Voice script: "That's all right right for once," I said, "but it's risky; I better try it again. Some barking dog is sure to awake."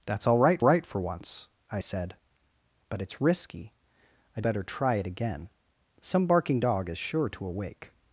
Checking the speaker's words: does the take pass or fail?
pass